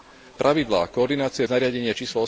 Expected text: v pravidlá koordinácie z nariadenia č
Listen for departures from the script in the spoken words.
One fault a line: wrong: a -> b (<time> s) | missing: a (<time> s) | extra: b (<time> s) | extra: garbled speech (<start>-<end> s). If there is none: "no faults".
no faults